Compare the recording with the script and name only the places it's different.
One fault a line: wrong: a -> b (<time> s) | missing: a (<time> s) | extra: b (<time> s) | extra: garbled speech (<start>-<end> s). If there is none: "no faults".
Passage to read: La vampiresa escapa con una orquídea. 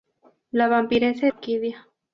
missing: escapa con una (1.3 s)